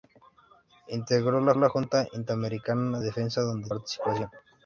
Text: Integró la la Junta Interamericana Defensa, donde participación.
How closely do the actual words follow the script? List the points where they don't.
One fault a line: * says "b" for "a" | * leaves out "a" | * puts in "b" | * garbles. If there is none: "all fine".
all fine